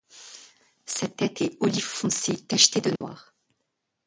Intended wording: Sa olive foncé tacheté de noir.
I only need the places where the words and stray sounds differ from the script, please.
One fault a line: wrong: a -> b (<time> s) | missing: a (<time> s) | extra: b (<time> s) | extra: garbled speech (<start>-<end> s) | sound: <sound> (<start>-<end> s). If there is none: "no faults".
extra: tête est (1.1 s)
sound: dropout (3.0-3.0 s)